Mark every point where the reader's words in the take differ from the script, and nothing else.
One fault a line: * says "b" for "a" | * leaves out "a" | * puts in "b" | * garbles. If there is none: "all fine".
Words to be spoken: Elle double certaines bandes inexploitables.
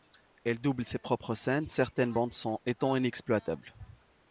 * puts in "ses propres scènes"
* puts in "son étant"